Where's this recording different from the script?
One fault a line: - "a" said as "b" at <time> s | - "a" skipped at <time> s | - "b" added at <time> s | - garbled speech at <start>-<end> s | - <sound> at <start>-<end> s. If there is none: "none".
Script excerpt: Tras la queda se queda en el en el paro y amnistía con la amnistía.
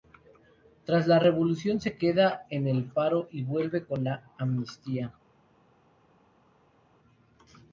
- "queda" said as "revolución" at 1.2 s
- "en el" skipped at 2.9 s
- "amnistía" said as "vuelve" at 3.4 s